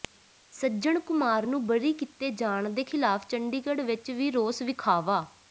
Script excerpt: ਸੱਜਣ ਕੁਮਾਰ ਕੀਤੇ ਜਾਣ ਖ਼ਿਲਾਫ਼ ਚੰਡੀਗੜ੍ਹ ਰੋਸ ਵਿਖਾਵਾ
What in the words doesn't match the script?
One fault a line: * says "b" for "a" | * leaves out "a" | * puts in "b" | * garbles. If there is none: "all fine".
* puts in "ਨੂੰ ਬਰੀ"
* puts in "ਦੇ"
* puts in "ਵਿਚ ਵੀ"